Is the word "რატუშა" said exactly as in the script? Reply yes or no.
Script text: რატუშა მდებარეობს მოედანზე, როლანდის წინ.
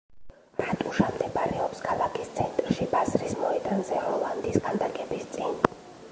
yes